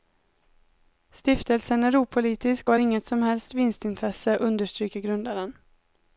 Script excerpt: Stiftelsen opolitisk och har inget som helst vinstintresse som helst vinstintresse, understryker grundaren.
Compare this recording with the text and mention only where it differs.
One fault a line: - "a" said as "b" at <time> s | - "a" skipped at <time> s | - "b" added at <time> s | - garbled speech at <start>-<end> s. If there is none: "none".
- "är" added at 1.8 s
- "som helst vinstintresse" skipped at 4.4 s